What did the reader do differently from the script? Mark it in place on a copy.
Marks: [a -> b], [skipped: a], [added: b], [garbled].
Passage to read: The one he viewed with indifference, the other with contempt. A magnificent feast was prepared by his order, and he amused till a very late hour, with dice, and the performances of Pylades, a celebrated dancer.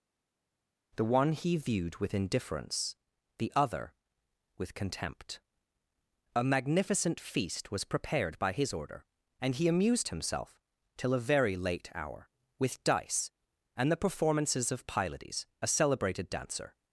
The one he viewed with indifference, the other with contempt. A magnificent feast was prepared by his order, and he amused [added: himself] till a very late hour, with dice, and the performances of Pylades, a celebrated dancer.